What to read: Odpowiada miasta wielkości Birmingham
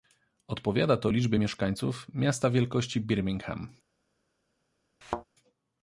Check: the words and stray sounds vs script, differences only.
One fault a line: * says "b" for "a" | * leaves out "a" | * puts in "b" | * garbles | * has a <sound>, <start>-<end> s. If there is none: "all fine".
* puts in "to liczbie mieszkańców"
* has a thud, 5.0-5.2 s